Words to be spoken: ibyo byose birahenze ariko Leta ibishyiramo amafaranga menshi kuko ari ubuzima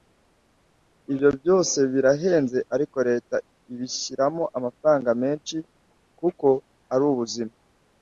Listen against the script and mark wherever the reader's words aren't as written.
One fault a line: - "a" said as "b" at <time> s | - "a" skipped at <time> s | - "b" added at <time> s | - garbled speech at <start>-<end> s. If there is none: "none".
none